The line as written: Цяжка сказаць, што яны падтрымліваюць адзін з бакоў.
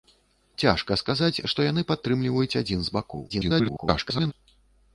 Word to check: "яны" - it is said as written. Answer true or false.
true